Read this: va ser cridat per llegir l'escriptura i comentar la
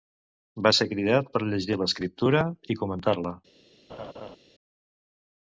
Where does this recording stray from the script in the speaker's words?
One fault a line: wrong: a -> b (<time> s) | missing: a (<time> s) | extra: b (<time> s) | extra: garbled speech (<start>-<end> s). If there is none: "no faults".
no faults